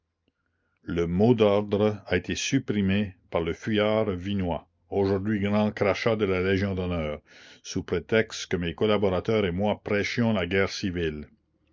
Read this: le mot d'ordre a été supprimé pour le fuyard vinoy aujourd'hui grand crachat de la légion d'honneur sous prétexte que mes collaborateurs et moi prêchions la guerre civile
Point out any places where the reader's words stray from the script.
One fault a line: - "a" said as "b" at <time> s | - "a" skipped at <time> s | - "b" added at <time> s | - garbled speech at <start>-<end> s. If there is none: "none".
- "pour" said as "par" at 3.3 s